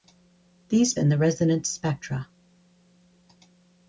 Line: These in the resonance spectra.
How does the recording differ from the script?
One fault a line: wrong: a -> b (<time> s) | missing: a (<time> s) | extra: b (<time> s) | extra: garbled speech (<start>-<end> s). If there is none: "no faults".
no faults